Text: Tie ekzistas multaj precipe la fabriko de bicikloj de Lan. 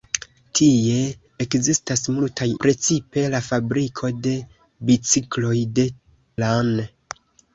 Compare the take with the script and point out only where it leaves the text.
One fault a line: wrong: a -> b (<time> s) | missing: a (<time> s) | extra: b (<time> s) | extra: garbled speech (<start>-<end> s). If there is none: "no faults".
no faults